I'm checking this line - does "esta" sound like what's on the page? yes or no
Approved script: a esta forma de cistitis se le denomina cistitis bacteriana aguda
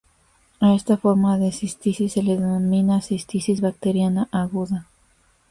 yes